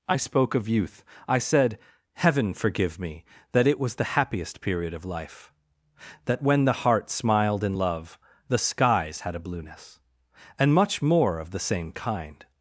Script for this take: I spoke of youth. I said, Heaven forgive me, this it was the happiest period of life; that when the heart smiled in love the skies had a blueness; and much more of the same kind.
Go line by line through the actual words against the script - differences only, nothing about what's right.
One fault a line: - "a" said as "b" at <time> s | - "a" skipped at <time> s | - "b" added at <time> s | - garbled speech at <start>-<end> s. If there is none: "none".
- "this" said as "that" at 3.5 s